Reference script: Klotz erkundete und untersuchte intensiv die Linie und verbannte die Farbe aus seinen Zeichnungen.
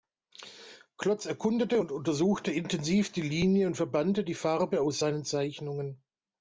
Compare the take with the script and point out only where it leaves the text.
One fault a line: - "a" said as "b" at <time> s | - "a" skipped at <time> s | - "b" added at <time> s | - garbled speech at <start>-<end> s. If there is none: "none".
none